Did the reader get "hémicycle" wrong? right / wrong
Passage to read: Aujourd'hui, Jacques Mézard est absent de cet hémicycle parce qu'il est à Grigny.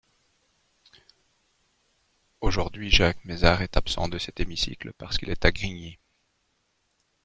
right